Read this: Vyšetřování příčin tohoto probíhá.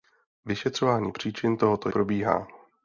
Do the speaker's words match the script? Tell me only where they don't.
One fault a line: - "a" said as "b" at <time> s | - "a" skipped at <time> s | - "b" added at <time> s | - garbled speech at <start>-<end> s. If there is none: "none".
none